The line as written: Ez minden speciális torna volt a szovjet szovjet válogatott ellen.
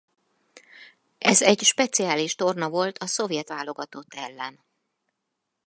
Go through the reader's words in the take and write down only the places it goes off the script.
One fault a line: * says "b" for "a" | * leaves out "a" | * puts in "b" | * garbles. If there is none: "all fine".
* says "egy" for "minden"
* leaves out "szovjet"